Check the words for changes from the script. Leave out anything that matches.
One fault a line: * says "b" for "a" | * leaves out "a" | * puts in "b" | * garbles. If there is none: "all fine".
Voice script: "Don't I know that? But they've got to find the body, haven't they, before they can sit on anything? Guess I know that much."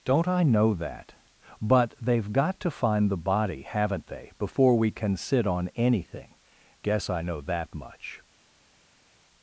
* says "we" for "they"